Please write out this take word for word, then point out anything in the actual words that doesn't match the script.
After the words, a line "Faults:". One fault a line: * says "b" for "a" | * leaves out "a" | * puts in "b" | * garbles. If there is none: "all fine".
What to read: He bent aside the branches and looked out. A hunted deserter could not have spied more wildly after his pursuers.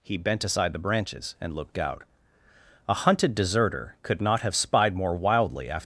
He bent aside the branches and looked out. A hunted deserter could not have spied more wildly after.
Faults:
* leaves out "his pursuers"